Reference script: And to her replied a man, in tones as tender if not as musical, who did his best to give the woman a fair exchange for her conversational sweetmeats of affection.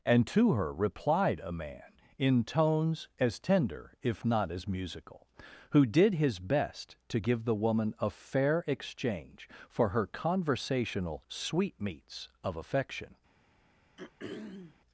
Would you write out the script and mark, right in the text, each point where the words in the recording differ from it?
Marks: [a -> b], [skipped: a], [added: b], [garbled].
And to her replied a man, in tones as tender if not as musical, who did his best to give the woman a fair exchange for her conversational sweetmeats of affection.